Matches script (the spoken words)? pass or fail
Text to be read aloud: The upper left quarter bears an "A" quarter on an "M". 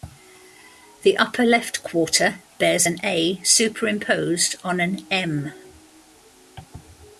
fail